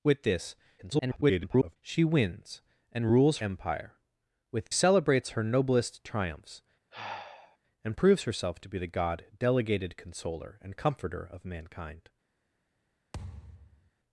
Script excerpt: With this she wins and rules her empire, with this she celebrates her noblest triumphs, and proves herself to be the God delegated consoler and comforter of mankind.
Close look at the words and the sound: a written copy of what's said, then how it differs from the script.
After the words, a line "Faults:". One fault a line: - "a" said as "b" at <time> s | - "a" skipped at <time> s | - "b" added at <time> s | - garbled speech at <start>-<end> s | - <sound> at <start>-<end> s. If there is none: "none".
With this [garbled] she wins and rules empire, with celebrates her noblest triumphs, and proves herself to be the God delegated consoler and comforter of mankind.
Faults:
- garbled speech at 0.8-1.8 s
- "her" skipped at 3.4 s
- "this she" skipped at 4.7 s
- sigh at 6.9-7.6 s
- thud at 13.1-13.9 s